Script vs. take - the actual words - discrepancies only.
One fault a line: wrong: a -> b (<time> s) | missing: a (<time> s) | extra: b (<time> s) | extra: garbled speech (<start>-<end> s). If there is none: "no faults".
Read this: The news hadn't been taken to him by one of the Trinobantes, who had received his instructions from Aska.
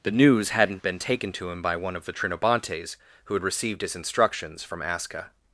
no faults